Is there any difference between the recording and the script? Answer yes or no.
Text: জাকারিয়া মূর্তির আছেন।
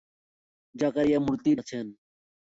no